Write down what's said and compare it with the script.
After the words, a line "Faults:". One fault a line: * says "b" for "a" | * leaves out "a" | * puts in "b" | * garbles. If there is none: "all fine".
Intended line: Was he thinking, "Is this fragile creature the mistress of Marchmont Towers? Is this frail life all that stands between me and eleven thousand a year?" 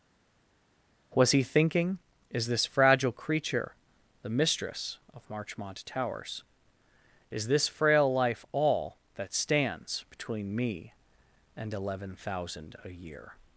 Was he thinking, "Is this fragile creature the mistress of Marchmont Towers? Is this frail life all that stands between me and eleven thousand a year?"
Faults:
all fine